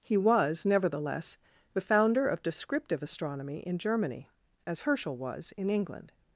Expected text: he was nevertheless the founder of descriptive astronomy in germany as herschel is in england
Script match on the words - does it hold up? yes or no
no